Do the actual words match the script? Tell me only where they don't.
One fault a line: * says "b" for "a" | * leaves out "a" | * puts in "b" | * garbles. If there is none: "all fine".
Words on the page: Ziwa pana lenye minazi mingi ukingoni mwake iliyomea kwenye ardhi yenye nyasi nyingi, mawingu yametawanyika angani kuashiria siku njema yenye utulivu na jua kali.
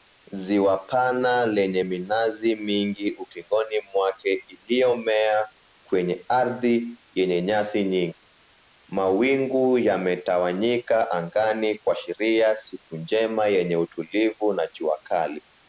all fine